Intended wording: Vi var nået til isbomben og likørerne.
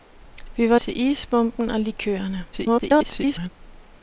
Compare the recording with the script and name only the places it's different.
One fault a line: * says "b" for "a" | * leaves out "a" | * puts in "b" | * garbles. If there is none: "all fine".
* leaves out "nået"
* garbles